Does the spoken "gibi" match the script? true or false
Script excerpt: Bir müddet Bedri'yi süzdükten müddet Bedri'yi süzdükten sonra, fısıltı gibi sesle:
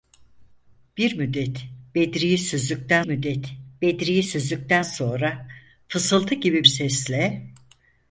true